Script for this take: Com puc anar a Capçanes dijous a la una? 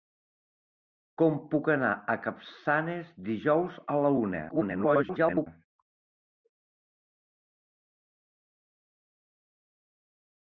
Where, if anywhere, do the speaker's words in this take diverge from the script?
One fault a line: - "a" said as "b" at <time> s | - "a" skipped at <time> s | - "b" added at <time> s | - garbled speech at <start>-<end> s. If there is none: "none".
- garbled speech at 4.5-5.5 s